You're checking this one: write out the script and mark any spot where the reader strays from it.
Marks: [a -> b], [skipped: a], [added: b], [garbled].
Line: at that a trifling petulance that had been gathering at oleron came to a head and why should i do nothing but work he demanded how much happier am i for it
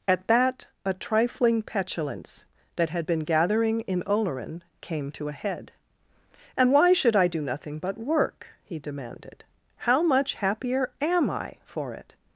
at that a trifling petulance that had been gathering [at -> in] oleron came to a head and why should i do nothing but work he demanded how much happier am i for it